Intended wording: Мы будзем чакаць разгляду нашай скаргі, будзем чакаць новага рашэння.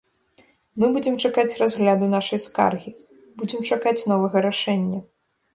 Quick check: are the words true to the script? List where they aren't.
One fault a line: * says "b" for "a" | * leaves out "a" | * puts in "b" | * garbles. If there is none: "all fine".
all fine